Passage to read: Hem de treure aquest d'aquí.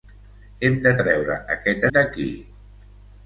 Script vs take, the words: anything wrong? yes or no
no